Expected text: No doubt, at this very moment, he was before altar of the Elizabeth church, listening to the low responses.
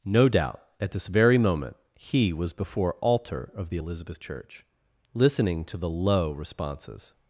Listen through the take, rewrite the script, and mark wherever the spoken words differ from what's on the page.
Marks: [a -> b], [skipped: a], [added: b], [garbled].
No doubt, at this very moment, he was before altar of the Elizabeth church, listening to the low responses.